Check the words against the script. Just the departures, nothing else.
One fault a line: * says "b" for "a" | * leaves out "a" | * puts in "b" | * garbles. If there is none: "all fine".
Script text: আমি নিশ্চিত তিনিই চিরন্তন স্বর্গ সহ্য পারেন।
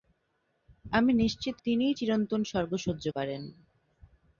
all fine